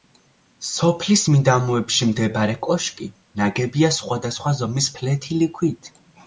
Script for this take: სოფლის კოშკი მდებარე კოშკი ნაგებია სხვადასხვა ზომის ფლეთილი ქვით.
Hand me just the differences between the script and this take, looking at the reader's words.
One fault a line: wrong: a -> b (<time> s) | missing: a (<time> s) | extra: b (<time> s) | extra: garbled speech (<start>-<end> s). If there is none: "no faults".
wrong: კოშკი -> მიდამოებში (1.3 s)